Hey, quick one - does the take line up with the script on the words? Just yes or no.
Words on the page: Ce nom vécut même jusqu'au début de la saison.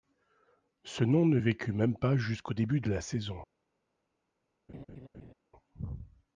no